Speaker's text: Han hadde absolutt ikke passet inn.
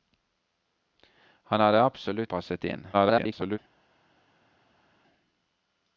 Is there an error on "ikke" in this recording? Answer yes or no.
yes